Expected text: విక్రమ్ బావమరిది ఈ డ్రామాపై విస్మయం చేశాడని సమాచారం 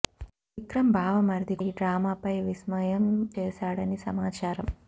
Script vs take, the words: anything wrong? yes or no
no